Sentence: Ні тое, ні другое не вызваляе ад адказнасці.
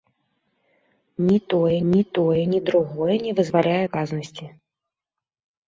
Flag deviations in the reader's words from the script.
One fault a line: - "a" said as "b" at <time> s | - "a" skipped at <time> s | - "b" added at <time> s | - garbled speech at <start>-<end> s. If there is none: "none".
- "тое ні" added at 2.2 s
- "ад" skipped at 3.8 s